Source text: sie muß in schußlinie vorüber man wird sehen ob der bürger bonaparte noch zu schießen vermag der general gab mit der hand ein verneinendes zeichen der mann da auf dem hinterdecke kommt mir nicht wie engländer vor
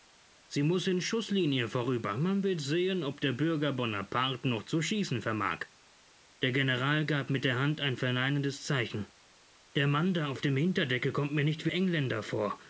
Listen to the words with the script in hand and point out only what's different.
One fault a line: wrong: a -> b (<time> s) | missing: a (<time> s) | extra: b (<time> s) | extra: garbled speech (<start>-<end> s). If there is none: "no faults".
no faults